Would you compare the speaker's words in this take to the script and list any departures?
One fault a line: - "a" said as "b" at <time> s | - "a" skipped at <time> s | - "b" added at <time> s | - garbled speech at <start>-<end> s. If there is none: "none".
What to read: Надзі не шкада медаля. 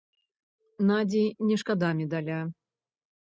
none